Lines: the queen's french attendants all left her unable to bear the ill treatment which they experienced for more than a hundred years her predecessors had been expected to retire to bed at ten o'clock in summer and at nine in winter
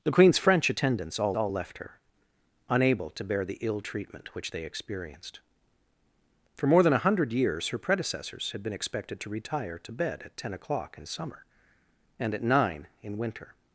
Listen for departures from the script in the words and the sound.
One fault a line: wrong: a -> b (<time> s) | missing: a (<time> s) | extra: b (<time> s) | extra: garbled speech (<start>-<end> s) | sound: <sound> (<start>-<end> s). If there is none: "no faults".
extra: all (1.4 s)